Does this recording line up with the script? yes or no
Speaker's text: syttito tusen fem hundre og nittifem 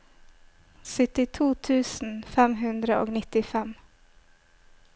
yes